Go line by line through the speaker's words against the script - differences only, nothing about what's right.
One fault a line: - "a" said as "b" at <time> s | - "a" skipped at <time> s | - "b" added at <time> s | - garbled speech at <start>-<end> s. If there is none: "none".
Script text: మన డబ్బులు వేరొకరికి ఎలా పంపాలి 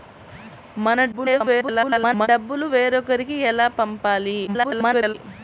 - garbled speech at 1.1-2.3 s
- garbled speech at 4.5-5.1 s